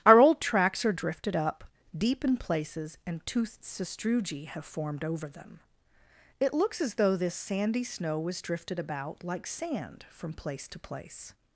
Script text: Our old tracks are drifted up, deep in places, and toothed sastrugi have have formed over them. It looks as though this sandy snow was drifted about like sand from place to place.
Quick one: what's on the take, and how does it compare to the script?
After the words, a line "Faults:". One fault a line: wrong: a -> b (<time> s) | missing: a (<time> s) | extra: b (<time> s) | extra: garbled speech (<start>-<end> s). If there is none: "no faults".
Our old tracks are drifted up, deep in places, and toothed sastrugi have formed over them. It looks as though this sandy snow was drifted about like sand from place to place.
Faults:
missing: have (4.7 s)